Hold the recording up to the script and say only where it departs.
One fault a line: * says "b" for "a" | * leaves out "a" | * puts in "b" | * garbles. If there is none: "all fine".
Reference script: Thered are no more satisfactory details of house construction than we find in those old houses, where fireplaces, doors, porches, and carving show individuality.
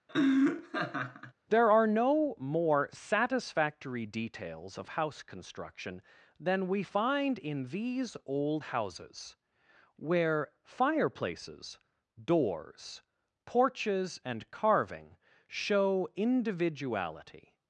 * says "There" for "Thered"
* says "these" for "those"